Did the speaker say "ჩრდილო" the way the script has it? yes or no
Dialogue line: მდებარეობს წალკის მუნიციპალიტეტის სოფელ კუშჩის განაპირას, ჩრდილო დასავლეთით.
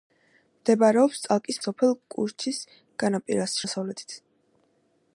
no